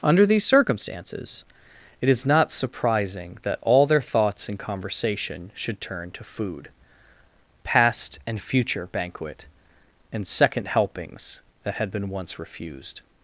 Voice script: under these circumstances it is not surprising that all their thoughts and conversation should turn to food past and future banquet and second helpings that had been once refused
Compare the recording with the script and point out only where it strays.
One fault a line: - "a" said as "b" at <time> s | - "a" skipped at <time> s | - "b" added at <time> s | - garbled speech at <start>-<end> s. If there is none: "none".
none